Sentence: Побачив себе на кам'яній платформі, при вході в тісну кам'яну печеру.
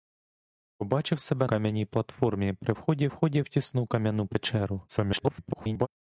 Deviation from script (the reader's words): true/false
true